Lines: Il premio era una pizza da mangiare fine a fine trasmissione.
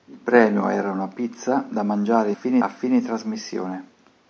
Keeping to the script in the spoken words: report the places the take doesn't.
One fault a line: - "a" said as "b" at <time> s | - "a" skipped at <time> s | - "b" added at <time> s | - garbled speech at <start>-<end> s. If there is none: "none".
none